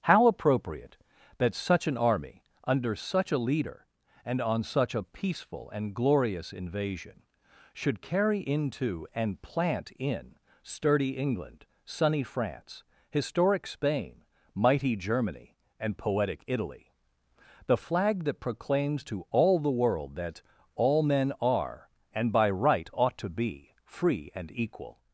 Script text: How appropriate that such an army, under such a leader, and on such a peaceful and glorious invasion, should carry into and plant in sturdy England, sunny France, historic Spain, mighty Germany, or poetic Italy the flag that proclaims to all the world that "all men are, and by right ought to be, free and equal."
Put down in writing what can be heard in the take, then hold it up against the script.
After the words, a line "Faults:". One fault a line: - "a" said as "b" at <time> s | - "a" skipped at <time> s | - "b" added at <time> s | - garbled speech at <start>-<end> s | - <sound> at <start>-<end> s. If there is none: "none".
How appropriate that such an army, under such a leader, and on such a peaceful and glorious invasion, should carry into and plant in sturdy England, sunny France, historic Spain, mighty Germany, and poetic Italy the flag that proclaims to all the world that "all men are, and by right ought to be, free and equal."
Faults:
- "or" said as "and" at 15.8 s